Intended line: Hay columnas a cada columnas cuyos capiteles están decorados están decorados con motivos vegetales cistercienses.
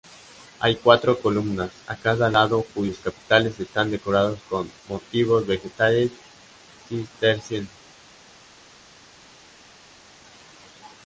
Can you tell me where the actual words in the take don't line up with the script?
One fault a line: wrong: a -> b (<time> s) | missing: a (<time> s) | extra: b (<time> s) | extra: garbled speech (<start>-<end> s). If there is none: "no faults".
extra: cuatro (0.8 s)
wrong: columnas -> lado (2.3 s)
missing: están decorados (4.4 s)